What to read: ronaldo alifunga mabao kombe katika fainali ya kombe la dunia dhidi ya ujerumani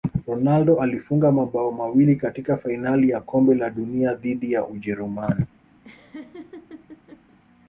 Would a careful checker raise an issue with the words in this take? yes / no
yes